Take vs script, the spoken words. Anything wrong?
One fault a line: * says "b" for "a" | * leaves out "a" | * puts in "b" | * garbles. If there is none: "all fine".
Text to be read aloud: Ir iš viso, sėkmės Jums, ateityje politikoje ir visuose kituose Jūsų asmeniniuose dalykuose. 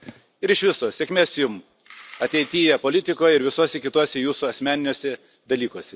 all fine